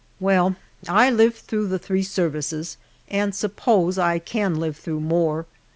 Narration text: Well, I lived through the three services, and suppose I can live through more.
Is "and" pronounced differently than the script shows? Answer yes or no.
no